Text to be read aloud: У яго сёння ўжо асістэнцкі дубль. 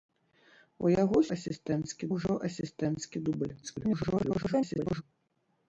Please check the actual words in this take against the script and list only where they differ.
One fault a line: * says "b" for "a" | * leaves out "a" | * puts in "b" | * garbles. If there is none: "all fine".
* says "асістэнцкі" for "сёння"
* garbles